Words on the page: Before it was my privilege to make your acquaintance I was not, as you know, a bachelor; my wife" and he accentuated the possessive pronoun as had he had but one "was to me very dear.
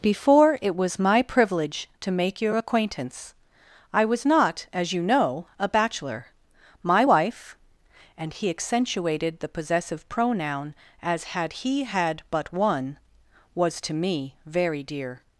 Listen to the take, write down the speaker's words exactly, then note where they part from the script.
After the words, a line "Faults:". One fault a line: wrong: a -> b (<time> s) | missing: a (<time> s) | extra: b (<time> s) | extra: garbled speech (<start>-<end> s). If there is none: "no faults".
Before it was my privilege to make your acquaintance I was not, as you know, a bachelor; my wife" and he accentuated the possessive pronoun as had he had but one "was to me very dear.
Faults:
no faults